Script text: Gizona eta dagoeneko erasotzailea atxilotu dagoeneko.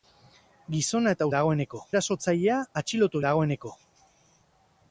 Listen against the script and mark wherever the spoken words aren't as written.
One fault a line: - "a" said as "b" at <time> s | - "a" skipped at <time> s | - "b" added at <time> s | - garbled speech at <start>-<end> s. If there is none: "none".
none